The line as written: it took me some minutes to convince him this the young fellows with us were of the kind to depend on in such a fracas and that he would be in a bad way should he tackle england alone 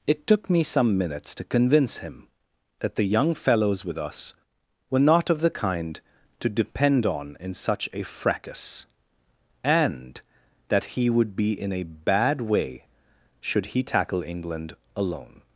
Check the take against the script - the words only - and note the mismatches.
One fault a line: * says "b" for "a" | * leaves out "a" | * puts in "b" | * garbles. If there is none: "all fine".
* says "that" for "this"
* puts in "not"